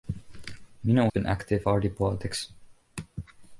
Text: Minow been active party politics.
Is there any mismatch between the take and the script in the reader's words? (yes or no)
no